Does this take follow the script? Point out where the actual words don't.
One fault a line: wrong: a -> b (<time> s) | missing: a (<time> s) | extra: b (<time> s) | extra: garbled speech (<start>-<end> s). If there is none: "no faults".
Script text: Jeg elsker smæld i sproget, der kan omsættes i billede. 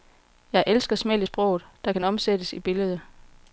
no faults